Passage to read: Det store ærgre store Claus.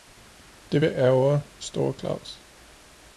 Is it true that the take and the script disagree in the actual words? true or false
true